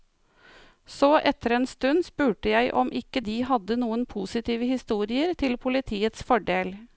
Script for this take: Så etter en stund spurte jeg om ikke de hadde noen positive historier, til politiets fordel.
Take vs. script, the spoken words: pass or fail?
pass